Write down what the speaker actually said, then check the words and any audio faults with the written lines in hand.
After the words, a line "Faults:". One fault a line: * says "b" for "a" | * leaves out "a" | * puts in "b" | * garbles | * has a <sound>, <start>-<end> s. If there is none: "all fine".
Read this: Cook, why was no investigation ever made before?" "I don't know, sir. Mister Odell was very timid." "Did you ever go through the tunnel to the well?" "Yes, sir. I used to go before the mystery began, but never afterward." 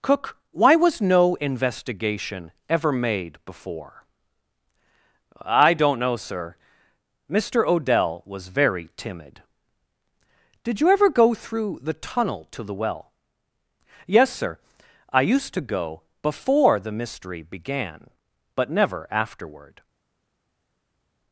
Cook, why was no investigation ever made before?" "I don't know, sir. Mister Odell was very timid." "Did you ever go through the tunnel to the well?" "Yes, sir. I used to go before the mystery began, but never afterward."
Faults:
all fine